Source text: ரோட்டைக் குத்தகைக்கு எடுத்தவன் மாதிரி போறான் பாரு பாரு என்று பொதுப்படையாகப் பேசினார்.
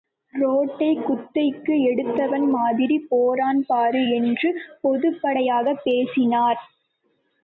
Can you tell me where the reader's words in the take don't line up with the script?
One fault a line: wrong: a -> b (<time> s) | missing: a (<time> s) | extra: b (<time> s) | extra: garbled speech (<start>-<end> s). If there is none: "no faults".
missing: பாரு (4.0 s)